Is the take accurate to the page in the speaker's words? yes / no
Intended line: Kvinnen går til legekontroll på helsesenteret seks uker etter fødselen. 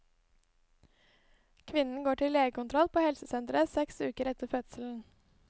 yes